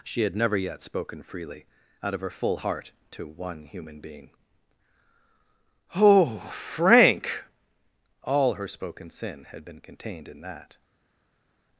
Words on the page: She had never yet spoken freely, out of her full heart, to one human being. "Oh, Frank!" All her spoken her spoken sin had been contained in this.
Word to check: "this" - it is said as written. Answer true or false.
false